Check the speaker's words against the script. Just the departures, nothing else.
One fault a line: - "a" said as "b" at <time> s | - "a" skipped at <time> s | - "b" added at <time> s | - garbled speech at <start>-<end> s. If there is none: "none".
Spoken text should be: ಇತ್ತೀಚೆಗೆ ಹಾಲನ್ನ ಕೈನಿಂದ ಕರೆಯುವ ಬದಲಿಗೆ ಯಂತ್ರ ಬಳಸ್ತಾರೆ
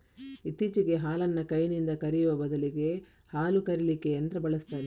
- "ಹಾಲು ಕರೀಲಿಕ್ಕೆ" added at 3.3 s